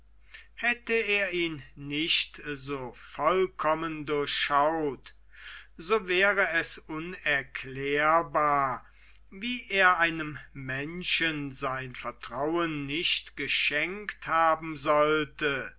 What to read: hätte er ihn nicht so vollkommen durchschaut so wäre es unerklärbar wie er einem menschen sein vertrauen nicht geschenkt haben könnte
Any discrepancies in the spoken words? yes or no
yes